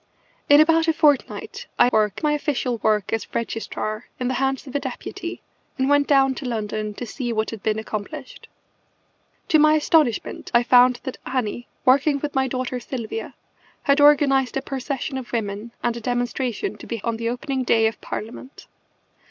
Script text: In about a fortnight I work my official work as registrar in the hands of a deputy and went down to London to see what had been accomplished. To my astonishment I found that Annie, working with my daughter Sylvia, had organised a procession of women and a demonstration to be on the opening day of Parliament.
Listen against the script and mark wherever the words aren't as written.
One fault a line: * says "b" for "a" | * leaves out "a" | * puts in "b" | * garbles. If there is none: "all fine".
all fine